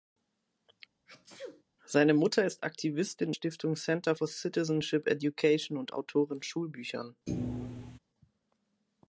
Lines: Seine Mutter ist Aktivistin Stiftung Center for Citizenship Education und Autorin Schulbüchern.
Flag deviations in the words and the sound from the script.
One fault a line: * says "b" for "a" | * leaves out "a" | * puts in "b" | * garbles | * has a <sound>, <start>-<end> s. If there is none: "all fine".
* has a sneeze, 1.1-1.6 s
* has a thud, 7.3-8.0 s